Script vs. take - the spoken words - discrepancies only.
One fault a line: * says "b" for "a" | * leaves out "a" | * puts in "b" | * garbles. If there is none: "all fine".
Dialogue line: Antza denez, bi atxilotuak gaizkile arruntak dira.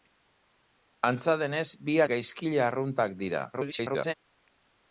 * leaves out "atxilotuak"
* garbles